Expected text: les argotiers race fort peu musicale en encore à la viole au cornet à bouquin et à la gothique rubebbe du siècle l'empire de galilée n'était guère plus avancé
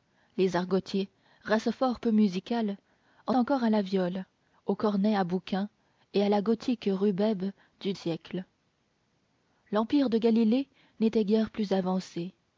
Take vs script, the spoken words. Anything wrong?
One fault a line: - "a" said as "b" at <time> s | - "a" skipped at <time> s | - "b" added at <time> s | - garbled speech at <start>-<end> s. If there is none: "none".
none